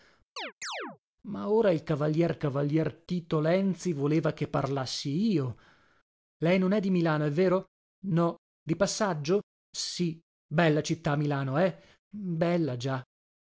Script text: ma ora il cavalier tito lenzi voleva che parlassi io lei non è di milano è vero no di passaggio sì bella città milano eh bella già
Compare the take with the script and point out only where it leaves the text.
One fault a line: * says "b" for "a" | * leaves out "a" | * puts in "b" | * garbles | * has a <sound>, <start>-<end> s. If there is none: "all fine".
* has a chirp, 0.4-1.0 s
* puts in "cavalier"